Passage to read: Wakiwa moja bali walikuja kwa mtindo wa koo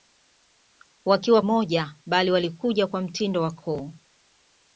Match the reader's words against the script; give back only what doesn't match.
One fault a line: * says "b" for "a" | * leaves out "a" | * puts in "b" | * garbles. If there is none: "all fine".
all fine